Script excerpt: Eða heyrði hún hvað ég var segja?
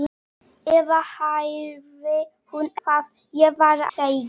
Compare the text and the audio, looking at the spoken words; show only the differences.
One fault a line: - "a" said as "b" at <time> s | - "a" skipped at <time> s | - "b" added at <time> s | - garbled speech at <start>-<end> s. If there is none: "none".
none